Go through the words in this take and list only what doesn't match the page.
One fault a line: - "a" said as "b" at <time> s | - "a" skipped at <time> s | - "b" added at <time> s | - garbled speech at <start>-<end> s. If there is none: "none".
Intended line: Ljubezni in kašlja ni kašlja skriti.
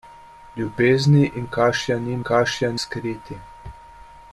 none